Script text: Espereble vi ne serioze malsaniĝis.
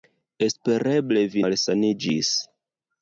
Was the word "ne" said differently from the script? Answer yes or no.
yes